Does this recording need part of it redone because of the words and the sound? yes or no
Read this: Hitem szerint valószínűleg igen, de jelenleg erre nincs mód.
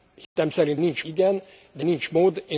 yes